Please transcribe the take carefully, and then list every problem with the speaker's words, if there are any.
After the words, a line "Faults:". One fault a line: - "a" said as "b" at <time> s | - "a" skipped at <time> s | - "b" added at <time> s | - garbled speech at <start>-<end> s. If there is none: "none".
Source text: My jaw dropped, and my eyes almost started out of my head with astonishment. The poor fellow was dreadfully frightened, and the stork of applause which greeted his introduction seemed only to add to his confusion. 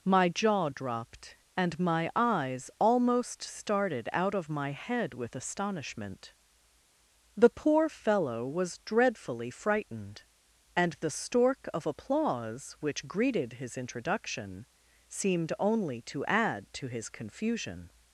My jaw dropped, and my eyes almost started out of my head with astonishment. The poor fellow was dreadfully frightened, and the stork of applause which greeted his introduction seemed only to add to his confusion.
Faults:
none